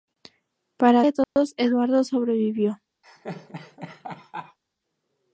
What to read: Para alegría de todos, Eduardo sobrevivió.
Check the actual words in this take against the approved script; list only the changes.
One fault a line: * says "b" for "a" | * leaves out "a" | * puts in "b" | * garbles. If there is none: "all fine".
* leaves out "alegría"